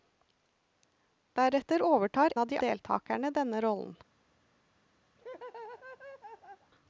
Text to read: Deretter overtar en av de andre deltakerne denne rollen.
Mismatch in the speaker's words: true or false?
true